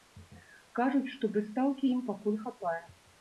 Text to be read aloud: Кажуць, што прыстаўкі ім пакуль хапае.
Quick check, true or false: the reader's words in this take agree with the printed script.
true